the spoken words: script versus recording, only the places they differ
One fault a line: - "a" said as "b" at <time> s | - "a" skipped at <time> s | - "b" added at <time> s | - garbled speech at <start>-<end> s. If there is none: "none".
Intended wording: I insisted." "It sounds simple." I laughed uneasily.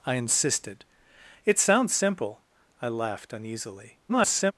- garbled speech at 4.1-4.5 s